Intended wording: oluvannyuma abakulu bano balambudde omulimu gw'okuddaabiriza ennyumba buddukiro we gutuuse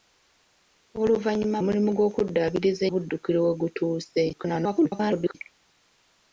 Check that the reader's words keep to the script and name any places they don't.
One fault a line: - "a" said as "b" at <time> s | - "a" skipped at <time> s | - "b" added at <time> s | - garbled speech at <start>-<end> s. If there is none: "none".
- "abakulu bano balambudde" skipped at 1.6 s
- "ennyumba" skipped at 2.8 s
- garbled speech at 4.3-5.3 s